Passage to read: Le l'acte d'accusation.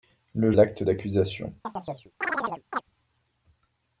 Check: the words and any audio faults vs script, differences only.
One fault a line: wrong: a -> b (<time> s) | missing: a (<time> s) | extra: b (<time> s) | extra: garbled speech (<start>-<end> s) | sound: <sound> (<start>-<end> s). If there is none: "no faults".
sound: chirp (1.6-2.8 s)